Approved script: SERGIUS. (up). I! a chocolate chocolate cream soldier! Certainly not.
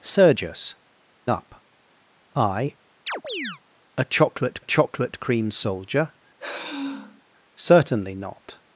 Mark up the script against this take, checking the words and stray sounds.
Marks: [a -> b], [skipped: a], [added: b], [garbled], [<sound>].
SERGIUS. (up). I! [chirp] a chocolate chocolate cream soldier! [sigh] Certainly not.